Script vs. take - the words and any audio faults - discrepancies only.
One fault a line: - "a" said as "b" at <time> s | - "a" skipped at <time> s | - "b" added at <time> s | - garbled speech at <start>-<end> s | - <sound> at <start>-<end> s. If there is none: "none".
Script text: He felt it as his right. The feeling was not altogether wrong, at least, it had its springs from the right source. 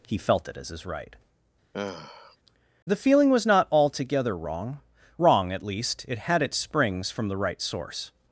- sigh at 1.7-2.4 s
- "wrong" added at 5.2 s